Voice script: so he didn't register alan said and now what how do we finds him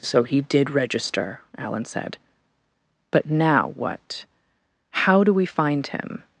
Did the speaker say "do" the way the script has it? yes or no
yes